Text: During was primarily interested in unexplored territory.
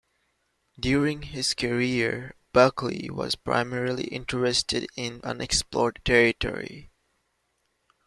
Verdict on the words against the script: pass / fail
fail